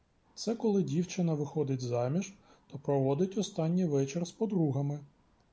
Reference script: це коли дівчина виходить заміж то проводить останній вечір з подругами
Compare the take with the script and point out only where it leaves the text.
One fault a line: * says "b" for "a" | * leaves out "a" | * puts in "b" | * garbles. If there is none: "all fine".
all fine